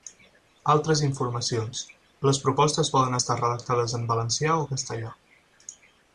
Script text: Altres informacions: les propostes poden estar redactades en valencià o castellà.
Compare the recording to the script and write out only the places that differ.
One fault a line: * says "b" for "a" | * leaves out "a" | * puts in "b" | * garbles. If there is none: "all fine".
all fine